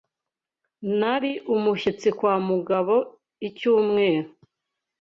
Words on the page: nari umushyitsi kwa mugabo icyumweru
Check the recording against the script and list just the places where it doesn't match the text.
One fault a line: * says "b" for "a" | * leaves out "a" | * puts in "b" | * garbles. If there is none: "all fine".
all fine